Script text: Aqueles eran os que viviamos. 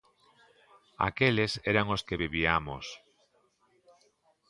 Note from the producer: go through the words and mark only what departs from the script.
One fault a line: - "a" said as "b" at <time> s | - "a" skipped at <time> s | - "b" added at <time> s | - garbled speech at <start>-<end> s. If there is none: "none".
none